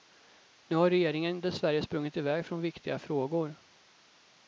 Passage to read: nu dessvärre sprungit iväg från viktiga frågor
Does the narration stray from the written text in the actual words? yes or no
yes